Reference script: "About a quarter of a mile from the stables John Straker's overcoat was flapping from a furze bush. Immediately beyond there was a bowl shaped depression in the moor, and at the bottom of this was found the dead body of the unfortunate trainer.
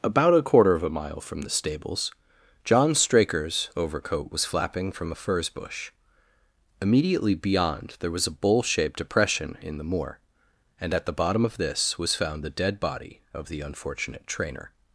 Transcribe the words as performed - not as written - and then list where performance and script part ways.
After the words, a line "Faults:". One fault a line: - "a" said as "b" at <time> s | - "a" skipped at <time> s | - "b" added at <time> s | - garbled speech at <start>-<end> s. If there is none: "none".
"About a quarter of a mile from the stables John Straker's overcoat was flapping from a furze bush. Immediately beyond there was a bowl shaped depression in the moor, and at the bottom of this was found the dead body of the unfortunate trainer.
Faults:
none